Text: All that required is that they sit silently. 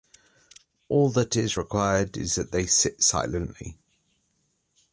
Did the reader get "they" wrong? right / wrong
right